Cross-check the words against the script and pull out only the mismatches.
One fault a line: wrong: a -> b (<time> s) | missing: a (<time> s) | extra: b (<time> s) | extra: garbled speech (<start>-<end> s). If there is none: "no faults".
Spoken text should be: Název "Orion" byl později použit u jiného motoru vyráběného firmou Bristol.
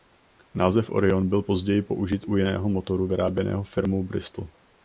no faults